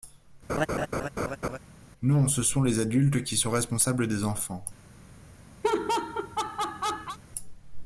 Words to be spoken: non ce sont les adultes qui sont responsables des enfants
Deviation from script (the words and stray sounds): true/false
true